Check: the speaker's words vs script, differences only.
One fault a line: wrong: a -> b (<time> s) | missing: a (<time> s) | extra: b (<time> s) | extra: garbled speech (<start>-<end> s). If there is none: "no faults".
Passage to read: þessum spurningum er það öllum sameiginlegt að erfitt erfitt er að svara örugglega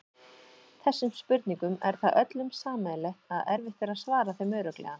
missing: erfitt (3.8 s)
extra: þeim (4.4 s)